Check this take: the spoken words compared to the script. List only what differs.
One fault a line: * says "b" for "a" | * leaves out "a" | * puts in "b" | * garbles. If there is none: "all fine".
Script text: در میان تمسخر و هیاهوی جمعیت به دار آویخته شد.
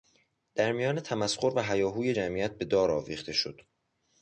all fine